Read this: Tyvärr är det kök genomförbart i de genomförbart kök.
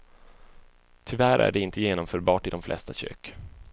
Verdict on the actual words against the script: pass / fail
fail